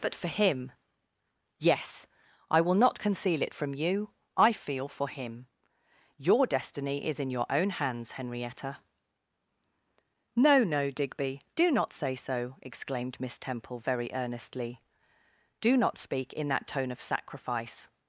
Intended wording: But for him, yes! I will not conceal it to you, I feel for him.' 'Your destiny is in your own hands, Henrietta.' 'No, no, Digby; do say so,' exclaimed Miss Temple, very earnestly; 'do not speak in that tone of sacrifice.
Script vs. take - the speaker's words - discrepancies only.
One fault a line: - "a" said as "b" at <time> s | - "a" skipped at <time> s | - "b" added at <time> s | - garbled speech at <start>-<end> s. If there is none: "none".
- "to" said as "from" at 3.5 s
- "not" added at 11.7 s